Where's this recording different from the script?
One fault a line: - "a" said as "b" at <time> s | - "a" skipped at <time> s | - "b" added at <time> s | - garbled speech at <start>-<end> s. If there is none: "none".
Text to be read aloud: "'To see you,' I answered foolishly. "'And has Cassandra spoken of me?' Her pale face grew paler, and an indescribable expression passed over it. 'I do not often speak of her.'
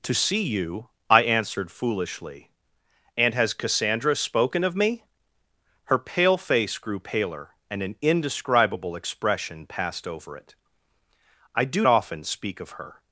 - "not" skipped at 11.8 s